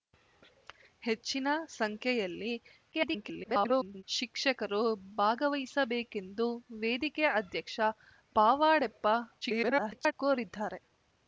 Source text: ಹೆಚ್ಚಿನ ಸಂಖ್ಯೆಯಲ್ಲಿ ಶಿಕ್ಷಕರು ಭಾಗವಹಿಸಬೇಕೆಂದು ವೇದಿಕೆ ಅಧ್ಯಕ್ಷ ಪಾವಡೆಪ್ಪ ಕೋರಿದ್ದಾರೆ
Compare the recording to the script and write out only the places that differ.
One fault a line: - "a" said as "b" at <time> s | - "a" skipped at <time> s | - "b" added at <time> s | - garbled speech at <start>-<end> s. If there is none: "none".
- garbled speech at 2.9-4.0 s
- garbled speech at 9.4-10.1 s